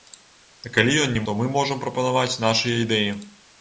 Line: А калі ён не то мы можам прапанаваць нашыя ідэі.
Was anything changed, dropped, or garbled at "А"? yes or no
no